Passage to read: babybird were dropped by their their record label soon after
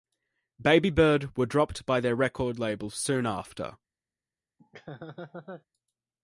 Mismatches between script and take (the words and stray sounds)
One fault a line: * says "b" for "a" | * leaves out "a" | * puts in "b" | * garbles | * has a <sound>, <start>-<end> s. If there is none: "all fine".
* leaves out "their"
* has a laugh, 4.6-5.7 s